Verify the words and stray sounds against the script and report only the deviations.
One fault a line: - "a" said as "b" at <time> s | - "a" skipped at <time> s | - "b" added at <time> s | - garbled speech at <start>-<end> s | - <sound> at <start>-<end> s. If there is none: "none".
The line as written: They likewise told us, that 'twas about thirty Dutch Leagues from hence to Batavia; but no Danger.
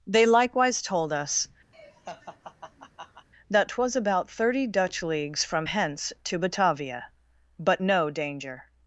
- laugh at 1.7-3.3 s